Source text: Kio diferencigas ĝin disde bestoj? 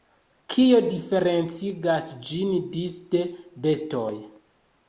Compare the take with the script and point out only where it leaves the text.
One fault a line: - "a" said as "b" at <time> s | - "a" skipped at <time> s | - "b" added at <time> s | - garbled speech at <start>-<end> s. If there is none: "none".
none